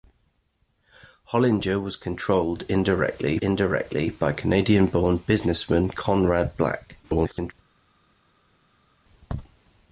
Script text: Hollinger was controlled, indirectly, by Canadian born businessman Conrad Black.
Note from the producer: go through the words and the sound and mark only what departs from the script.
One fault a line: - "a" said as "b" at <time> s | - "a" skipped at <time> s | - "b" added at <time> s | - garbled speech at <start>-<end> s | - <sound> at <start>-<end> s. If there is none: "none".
- "indirectly" added at 3.4 s
- garbled speech at 7.0-7.5 s